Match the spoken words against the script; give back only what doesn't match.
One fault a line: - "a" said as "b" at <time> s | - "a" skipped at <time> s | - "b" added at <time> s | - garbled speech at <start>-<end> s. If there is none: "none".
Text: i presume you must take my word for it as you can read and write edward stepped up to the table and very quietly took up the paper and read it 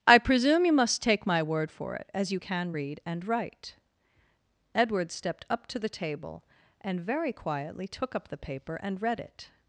none